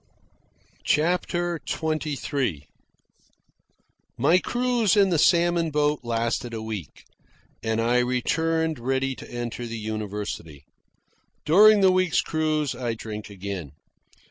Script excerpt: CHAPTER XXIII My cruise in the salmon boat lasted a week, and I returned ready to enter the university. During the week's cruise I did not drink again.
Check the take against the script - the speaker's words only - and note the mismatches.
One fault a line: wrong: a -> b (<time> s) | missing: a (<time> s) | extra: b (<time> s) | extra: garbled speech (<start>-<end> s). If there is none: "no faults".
missing: did not (12.9 s)